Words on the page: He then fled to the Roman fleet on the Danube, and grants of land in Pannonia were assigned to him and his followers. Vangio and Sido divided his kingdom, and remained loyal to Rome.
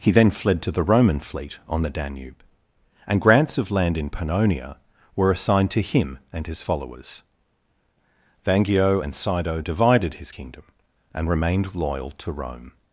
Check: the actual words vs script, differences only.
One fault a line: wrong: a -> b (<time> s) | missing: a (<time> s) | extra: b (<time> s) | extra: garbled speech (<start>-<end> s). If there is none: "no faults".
no faults